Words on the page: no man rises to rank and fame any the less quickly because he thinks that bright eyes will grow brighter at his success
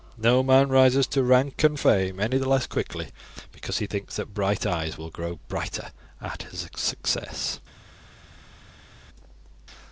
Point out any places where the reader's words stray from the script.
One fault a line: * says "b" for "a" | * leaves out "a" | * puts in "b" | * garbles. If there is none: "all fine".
all fine